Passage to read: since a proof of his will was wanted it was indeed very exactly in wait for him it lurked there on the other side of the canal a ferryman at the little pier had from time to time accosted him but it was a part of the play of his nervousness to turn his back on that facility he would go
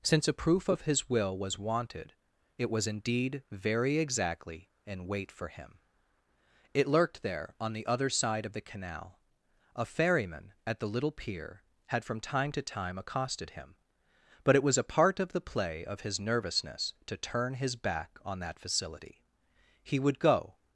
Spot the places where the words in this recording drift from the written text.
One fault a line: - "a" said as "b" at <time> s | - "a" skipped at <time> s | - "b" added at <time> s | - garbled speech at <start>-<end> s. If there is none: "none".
none